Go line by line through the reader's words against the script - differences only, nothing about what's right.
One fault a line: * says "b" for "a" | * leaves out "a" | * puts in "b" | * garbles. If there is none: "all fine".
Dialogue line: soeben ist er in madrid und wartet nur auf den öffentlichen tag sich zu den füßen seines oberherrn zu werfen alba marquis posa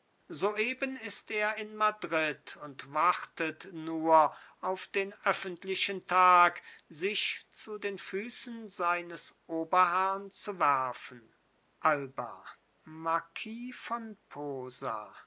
* puts in "von"